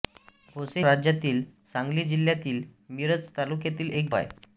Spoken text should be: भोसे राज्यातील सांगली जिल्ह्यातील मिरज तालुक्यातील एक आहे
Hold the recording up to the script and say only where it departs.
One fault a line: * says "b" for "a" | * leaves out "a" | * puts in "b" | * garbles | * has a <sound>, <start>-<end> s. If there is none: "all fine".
all fine